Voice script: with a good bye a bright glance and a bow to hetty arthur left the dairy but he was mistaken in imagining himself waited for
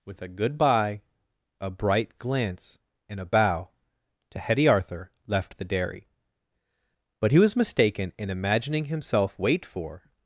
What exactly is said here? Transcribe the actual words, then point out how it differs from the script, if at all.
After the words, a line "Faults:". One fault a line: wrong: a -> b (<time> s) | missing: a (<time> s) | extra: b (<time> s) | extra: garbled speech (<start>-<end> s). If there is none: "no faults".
with a good bye a bright glance and a bow to hetty arthur left the dairy but he was mistaken in imagining himself wait for
Faults:
wrong: waited -> wait (9.4 s)